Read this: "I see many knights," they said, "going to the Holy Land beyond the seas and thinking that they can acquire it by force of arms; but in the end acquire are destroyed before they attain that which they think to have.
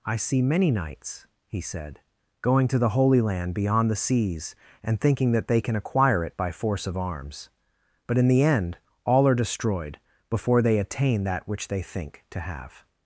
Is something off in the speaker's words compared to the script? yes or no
yes